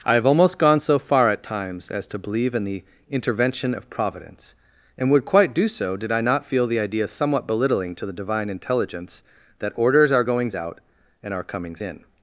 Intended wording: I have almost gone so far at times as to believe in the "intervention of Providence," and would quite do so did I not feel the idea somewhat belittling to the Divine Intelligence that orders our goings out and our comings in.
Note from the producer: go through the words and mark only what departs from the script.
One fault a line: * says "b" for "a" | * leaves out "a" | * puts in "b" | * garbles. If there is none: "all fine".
all fine